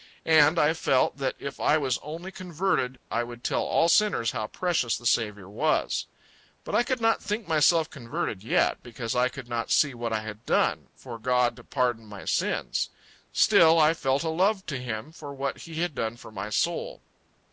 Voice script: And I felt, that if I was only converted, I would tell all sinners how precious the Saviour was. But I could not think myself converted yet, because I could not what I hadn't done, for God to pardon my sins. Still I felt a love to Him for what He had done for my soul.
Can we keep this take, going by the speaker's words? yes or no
no